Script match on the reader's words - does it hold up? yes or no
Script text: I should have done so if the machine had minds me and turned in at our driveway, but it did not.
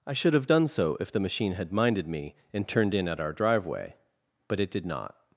no